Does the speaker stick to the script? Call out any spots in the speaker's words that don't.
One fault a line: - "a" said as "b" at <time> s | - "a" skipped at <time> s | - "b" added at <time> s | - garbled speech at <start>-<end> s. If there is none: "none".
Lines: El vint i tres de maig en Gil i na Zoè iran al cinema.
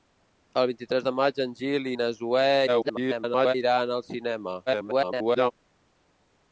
- garbled speech at 2.7-3.5 s
- garbled speech at 4.7-5.5 s